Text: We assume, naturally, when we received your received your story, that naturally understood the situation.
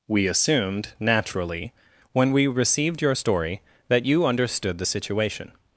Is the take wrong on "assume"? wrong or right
wrong